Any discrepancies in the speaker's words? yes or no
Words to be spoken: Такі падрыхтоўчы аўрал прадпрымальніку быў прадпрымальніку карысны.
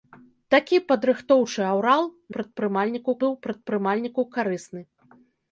no